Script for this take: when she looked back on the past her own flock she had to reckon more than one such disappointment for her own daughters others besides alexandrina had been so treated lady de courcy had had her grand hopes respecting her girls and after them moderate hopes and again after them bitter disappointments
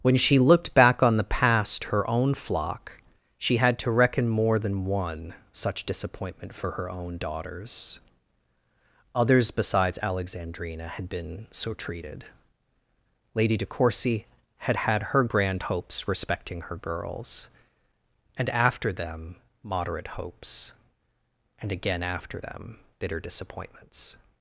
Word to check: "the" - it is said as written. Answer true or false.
true